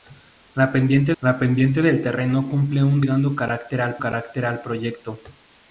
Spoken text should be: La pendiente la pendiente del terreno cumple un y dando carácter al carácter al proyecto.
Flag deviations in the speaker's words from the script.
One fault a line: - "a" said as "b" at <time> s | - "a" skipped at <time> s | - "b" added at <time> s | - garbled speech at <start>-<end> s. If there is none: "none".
none